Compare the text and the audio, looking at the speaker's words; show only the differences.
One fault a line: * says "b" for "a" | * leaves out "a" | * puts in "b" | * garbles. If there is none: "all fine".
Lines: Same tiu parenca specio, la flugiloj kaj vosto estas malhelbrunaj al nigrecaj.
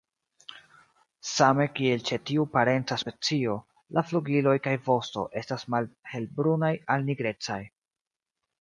* puts in "kiel ĉe"